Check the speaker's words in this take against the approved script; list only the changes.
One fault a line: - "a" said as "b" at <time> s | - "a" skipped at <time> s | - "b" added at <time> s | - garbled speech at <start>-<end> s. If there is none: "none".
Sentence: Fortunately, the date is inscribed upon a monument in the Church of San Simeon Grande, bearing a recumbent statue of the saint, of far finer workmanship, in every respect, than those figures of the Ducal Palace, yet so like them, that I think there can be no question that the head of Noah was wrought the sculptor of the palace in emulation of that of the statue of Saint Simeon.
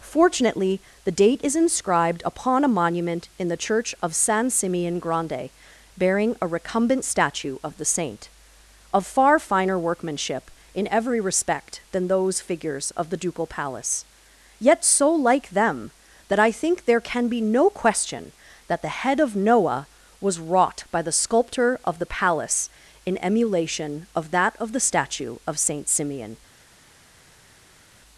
- "by" added at 20.9 s